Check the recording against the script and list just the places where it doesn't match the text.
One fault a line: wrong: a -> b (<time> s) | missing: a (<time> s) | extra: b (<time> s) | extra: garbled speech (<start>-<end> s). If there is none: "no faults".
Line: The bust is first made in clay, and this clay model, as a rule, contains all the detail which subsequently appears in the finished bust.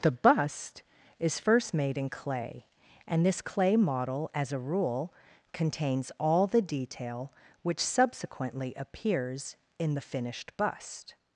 no faults